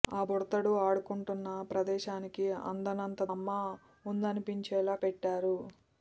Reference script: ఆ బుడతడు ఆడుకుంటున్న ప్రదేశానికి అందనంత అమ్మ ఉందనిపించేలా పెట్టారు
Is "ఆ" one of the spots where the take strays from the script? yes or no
no